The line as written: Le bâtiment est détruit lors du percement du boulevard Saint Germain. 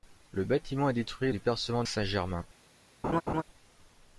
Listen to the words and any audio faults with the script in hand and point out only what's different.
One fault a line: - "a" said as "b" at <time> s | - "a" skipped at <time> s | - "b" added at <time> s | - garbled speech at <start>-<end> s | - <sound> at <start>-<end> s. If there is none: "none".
- "lors" skipped at 1.3 s
- "du boulevard" skipped at 1.8 s
- laugh at 3.0-3.4 s